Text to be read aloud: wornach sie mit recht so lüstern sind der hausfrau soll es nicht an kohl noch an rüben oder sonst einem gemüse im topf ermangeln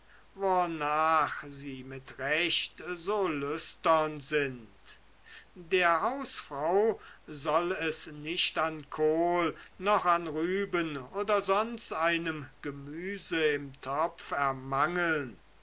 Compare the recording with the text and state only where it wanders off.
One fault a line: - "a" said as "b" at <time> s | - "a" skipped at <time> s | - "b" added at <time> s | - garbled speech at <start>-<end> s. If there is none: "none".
none